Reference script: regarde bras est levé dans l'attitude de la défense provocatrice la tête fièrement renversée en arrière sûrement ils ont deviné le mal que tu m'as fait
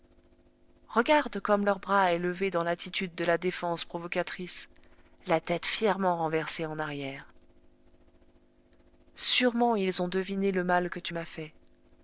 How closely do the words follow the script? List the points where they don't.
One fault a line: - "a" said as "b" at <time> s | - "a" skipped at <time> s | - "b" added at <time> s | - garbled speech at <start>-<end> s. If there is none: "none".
- "comme leur" added at 1.4 s